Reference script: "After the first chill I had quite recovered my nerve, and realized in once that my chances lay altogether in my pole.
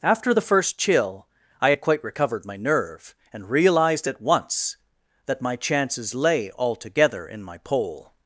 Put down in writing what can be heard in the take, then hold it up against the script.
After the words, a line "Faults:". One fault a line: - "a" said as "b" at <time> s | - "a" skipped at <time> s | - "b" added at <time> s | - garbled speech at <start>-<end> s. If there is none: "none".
"After the first chill I had quite recovered my nerve, and realized at once that my chances lay altogether in my pole.
Faults:
- "in" said as "at" at 4.1 s